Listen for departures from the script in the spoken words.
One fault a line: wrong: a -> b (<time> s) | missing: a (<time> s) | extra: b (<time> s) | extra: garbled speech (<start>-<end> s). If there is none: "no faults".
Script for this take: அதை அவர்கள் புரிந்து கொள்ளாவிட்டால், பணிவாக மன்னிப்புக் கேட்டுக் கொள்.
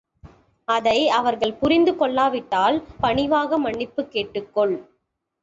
no faults